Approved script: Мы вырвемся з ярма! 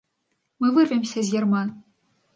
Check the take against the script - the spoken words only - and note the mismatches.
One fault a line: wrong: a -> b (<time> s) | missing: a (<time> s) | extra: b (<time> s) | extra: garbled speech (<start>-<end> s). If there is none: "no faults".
no faults